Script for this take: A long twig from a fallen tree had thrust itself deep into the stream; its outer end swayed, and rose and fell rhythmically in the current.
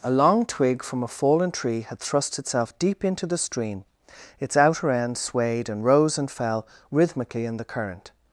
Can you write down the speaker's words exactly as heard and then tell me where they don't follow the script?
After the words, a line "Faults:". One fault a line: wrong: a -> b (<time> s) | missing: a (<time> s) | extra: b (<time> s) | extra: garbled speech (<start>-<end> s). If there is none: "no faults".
A long twig from a fallen tree had thrust itself deep into the stream; its outer end swayed, and rose and fell rhythmically in the current.
Faults:
no faults